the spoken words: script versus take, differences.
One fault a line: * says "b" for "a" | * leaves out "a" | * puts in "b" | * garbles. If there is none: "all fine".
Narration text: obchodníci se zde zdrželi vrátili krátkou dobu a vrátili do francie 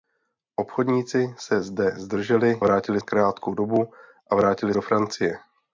all fine